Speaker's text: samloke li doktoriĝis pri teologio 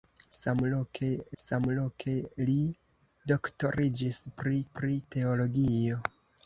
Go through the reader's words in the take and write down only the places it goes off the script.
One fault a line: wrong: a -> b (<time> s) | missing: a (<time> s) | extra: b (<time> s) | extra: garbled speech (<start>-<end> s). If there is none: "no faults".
extra: samloke (1.4 s)
extra: pri (4.8 s)